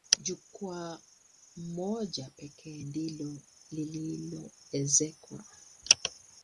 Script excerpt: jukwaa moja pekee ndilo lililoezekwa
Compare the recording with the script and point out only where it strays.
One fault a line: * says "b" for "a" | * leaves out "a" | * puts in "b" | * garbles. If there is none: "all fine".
all fine